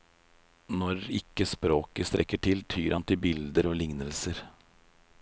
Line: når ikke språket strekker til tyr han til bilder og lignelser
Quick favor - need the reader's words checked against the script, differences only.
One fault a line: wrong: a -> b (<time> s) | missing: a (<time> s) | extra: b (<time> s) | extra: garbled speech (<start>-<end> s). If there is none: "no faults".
no faults